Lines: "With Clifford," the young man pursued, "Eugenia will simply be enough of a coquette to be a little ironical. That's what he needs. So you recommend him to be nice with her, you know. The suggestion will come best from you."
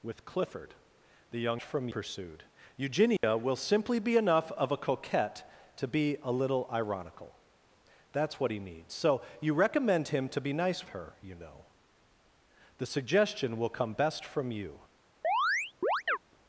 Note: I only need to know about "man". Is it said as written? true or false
false